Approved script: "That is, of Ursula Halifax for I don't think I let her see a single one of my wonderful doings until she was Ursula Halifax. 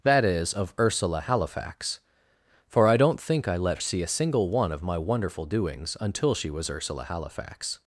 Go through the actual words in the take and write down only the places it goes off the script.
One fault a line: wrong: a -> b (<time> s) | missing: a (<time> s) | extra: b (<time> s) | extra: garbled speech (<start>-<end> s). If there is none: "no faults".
missing: her (3.8 s)